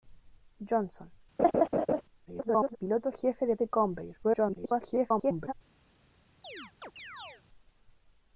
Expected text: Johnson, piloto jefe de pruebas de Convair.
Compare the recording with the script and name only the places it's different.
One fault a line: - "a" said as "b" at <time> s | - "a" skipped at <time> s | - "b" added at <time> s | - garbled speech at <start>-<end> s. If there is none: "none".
- garbled speech at 2.3-2.8 s
- "pruebas" skipped at 3.6 s
- garbled speech at 4.2-5.5 s